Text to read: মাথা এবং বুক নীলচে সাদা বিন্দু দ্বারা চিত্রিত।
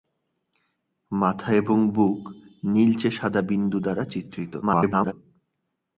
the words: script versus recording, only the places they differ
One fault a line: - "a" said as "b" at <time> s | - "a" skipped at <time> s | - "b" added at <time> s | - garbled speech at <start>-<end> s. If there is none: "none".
- garbled speech at 4.6-5.1 s